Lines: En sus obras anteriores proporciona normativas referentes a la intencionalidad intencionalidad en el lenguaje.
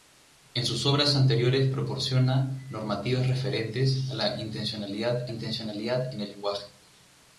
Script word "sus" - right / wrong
right